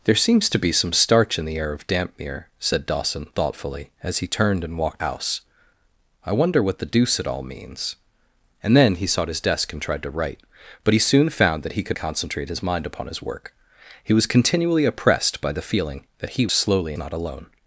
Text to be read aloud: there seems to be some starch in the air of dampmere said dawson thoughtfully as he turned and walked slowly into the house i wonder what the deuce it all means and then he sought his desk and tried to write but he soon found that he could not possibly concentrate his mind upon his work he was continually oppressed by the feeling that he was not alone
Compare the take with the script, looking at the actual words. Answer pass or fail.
fail